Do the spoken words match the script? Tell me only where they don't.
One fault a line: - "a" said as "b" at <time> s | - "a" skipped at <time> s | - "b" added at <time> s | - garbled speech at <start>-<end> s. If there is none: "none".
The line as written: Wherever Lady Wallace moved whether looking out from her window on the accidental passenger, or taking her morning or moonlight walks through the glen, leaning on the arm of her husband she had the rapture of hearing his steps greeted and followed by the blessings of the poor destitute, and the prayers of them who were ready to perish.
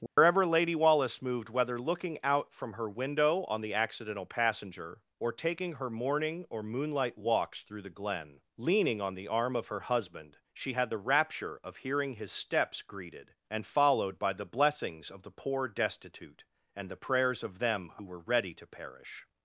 none